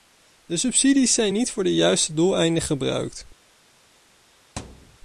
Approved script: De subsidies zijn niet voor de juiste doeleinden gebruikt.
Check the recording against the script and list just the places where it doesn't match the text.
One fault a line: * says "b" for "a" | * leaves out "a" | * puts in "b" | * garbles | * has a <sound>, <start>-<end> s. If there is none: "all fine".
* has a thud, 4.6-5.0 s